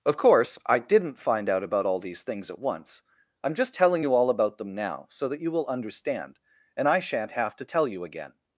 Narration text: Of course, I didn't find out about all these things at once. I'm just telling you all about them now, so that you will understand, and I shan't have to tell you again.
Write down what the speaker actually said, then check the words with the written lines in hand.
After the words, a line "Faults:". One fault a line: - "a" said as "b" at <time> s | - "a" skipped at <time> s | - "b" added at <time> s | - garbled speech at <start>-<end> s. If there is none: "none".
Of course, I didn't find out about all these things at once. I'm just telling you all about them now, so that you will understand, and I shan't have to tell you again.
Faults:
none